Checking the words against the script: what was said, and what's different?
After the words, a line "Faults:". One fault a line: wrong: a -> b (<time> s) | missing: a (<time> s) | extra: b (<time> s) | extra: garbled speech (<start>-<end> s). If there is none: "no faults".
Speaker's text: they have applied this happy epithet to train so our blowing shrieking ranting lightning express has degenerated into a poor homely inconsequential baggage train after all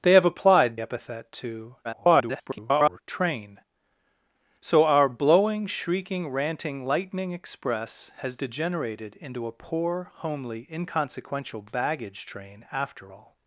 they have applied epithet to [garbled] train so our blowing shrieking ranting lightning express has degenerated into a poor homely inconsequential baggage train after all
Faults:
missing: this happy (0.8 s)
extra: garbled speech (1.8-3.0 s)